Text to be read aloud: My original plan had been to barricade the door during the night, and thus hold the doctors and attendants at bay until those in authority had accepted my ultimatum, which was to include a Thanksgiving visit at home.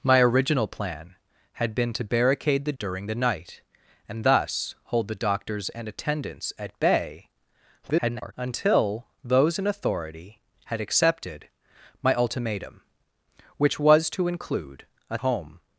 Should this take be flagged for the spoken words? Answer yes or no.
yes